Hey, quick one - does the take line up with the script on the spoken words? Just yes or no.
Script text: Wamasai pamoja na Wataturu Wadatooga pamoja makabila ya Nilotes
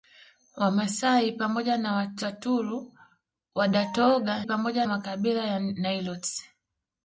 yes